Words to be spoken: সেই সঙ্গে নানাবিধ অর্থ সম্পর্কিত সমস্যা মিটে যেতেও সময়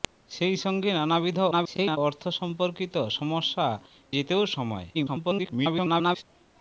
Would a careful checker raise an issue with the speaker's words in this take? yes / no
yes